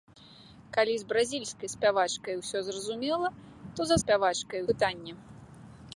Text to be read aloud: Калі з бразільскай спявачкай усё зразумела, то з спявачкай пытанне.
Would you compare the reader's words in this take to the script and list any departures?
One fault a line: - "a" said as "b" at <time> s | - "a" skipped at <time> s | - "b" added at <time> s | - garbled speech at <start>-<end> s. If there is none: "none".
none